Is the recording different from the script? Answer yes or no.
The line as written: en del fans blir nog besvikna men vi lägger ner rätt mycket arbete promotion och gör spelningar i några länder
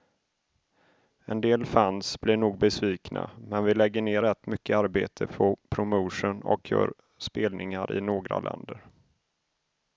yes